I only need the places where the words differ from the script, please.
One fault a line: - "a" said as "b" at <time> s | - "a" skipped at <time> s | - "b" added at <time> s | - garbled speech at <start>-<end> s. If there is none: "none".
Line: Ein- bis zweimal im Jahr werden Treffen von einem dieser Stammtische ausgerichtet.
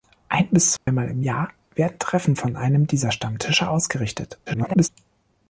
- garbled speech at 4.5-4.9 s